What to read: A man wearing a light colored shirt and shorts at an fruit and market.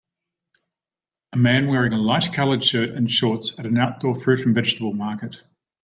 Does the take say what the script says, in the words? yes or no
no